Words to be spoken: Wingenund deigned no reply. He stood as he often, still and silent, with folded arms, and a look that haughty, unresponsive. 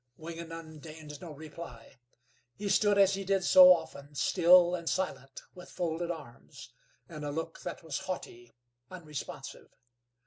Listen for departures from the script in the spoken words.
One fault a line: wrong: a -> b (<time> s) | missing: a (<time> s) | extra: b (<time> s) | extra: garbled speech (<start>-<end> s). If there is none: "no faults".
extra: did so (3.2 s)
extra: was (7.8 s)